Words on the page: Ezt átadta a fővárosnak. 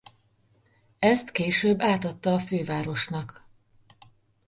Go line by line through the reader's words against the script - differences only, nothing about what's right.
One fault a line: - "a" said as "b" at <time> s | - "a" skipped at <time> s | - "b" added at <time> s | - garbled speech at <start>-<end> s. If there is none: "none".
- "később" added at 1.3 s